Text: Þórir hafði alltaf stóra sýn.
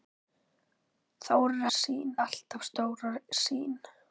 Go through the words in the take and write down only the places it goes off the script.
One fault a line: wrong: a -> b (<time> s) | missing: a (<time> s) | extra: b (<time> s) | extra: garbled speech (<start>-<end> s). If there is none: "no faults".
wrong: hafði -> sýn (1.8 s)